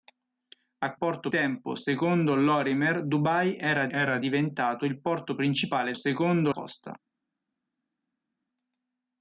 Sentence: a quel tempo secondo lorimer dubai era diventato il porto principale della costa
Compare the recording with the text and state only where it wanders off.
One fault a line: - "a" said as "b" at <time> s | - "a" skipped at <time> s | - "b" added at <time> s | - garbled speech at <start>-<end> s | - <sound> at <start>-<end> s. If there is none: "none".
- "quel" said as "porto" at 0.9 s
- "era" added at 3.9 s
- "della" said as "secondo" at 5.9 s